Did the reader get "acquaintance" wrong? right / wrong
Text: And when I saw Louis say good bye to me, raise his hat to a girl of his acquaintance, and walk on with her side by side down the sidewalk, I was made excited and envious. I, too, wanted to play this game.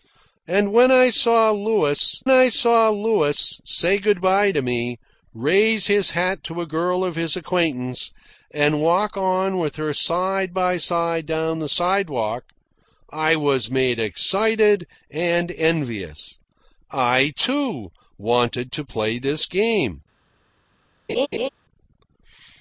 right